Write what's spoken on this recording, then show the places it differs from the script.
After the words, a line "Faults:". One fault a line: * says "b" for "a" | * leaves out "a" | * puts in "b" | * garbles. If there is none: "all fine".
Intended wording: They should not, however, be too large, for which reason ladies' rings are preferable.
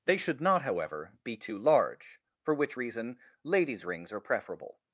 They should not, however, be too large, for which reason ladies' rings are preferable.
Faults:
all fine